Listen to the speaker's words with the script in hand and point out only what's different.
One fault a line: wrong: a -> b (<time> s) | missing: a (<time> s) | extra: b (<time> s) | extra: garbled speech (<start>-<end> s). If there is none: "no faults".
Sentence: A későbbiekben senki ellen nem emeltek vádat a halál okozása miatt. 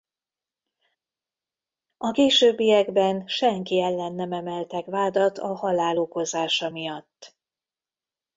no faults